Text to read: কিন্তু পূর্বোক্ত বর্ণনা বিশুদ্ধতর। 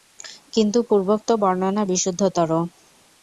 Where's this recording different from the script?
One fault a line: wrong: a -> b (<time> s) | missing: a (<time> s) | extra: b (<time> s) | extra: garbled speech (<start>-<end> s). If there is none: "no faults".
no faults